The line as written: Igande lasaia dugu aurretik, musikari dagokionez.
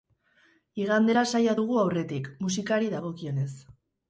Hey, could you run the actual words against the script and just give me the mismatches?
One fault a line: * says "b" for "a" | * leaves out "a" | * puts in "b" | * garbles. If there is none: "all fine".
all fine